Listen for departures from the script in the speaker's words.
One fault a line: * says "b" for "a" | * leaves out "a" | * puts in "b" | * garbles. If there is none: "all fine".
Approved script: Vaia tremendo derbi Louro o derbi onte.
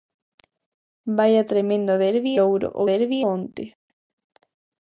all fine